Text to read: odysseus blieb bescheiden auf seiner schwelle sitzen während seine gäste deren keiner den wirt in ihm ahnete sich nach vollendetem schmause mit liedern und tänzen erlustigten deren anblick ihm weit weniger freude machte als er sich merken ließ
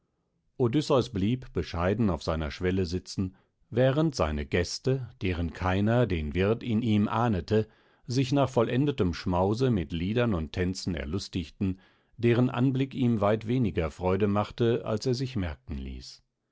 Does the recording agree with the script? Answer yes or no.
yes